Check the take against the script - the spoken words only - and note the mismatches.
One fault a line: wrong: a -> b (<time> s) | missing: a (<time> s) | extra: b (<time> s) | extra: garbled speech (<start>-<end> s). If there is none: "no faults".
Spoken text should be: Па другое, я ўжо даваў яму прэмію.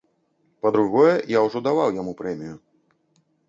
no faults